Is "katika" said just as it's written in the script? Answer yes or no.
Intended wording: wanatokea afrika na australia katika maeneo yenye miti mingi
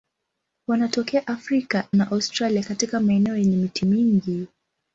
yes